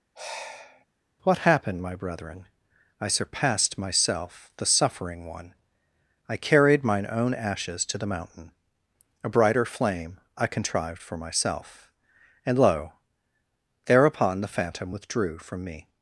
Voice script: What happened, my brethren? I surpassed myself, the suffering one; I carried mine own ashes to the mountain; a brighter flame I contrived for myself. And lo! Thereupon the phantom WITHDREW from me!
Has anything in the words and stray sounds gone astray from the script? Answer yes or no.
yes